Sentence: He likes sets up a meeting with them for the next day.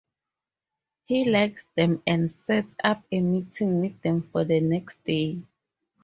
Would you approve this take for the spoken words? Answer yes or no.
no